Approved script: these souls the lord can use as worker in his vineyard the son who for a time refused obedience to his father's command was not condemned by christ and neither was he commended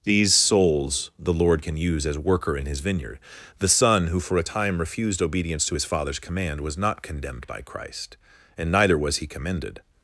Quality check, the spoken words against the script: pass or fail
pass